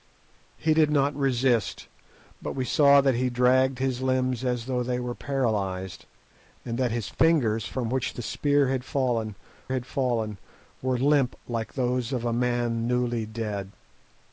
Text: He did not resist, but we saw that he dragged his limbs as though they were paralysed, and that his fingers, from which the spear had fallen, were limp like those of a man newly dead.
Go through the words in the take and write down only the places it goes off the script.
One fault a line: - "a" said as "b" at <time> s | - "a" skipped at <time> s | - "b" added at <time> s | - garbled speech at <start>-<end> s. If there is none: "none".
- "had fallen" added at 9.7 s